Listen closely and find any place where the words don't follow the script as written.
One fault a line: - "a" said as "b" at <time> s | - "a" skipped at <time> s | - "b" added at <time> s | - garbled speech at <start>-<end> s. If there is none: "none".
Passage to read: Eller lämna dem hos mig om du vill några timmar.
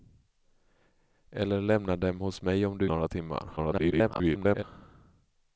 - "vill" skipped at 2.9 s
- garbled speech at 3.6-4.6 s